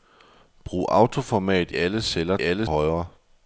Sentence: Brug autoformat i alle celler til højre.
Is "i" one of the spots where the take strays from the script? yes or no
yes